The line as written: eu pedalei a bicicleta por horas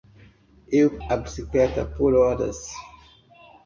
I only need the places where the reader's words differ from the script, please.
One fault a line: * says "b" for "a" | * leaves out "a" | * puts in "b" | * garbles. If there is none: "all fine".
* leaves out "pedalei"